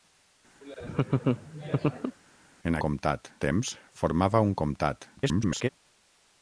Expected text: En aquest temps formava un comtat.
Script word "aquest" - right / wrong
wrong